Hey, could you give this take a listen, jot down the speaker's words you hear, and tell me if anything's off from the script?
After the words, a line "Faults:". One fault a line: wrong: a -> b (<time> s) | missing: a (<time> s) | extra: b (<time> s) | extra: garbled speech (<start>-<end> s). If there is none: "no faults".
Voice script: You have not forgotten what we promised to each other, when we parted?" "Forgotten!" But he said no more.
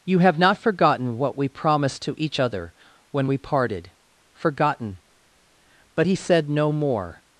You have not forgotten what we promised to each other, when we parted?" "Forgotten!" But he said no more.
Faults:
no faults